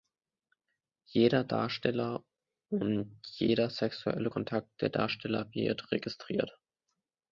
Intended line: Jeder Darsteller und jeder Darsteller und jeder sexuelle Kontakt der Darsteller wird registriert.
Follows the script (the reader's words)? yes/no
no